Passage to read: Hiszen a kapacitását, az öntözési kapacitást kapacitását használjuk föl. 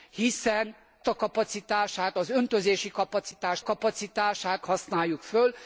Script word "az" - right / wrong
right